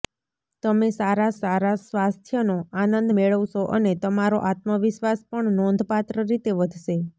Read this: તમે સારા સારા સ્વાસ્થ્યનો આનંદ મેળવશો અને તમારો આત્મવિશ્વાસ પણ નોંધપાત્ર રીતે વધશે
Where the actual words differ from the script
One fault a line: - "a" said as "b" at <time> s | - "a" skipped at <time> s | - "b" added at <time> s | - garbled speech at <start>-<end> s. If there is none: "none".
none